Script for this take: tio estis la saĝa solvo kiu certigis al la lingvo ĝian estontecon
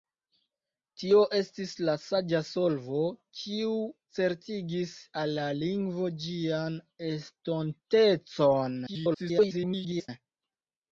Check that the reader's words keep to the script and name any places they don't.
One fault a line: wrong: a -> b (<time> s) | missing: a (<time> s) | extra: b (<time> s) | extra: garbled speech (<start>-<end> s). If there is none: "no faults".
extra: garbled speech (8.9-10.1 s)